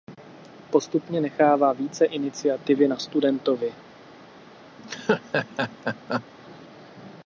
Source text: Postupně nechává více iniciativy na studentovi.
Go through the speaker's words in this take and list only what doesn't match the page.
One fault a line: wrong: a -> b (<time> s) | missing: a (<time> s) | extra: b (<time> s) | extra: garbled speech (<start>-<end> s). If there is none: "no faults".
no faults